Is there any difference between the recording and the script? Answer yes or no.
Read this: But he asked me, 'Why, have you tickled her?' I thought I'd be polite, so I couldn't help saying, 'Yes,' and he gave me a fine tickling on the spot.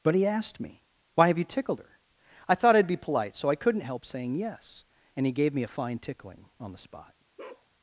no